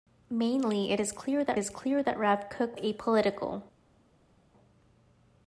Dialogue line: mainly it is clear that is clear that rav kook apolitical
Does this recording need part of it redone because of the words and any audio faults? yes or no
no